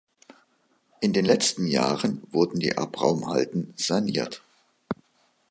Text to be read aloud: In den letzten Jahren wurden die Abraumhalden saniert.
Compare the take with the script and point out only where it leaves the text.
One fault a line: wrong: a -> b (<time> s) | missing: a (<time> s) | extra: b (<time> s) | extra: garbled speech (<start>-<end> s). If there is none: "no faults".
no faults